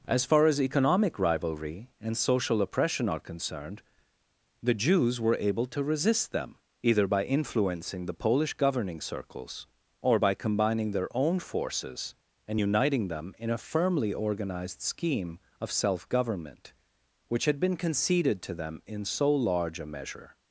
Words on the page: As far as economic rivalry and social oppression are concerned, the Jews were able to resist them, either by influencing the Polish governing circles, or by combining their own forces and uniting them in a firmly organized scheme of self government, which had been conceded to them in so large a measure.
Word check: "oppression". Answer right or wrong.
right